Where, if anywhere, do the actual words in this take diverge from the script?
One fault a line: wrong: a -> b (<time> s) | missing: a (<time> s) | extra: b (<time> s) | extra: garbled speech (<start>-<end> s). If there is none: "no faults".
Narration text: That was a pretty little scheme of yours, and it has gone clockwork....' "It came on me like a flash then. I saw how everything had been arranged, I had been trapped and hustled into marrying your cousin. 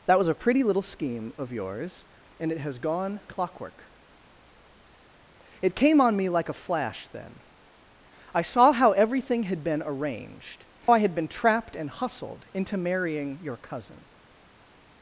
no faults